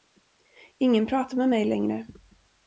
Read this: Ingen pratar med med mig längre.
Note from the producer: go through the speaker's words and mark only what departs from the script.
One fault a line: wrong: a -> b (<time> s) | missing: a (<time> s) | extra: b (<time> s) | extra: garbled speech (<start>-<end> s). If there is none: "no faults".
missing: med (1.5 s)